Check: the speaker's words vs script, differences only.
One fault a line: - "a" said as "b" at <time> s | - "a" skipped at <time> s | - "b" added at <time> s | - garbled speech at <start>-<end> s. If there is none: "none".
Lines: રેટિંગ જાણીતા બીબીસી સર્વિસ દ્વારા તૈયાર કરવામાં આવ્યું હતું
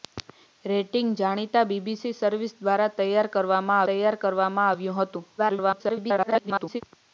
- "તૈયાર કરવામાં" added at 3.9 s
- garbled speech at 5.4-6.8 s